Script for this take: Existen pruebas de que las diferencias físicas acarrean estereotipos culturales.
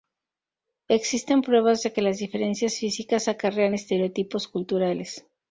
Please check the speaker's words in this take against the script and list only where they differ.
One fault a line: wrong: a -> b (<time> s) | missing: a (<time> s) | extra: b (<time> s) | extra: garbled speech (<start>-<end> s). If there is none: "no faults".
no faults